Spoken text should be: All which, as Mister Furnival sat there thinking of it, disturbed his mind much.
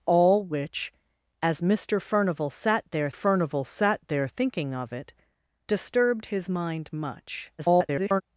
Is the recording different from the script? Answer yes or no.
yes